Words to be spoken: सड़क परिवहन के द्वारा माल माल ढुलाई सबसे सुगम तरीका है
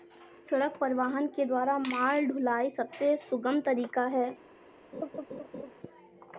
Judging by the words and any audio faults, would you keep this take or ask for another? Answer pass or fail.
fail